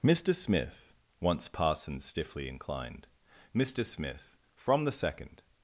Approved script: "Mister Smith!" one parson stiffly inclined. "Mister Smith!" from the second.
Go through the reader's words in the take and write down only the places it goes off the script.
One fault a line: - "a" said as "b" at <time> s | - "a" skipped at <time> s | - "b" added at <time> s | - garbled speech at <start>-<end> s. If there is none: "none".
- "one" said as "once" at 1.2 s